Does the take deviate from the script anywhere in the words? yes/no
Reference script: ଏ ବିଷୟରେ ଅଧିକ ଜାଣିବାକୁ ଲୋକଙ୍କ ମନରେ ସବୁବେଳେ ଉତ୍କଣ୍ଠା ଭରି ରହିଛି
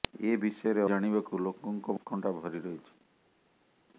yes